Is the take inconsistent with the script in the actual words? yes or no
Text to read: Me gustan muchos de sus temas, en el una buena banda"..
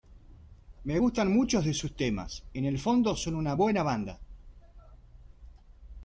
yes